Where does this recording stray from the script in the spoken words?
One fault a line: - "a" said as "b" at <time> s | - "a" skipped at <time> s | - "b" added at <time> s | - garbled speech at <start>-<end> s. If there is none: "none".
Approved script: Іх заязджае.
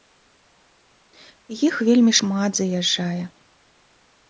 - "вельмі шмат" added at 1.9 s